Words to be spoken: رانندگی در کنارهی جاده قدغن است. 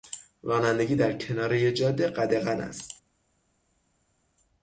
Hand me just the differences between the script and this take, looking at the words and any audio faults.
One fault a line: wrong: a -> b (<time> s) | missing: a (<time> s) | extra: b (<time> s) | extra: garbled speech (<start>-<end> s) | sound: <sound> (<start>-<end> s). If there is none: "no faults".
no faults